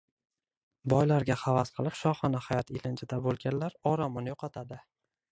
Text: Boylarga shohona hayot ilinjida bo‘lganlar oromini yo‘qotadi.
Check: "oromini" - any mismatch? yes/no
no